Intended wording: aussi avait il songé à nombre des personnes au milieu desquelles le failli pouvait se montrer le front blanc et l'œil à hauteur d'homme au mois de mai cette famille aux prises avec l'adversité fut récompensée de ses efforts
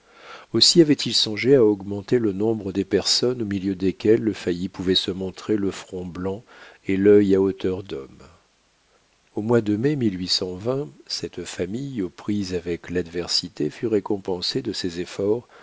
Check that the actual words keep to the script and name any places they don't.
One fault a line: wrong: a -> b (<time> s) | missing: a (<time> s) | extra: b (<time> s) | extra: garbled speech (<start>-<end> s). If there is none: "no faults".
extra: augmenter le (1.6 s)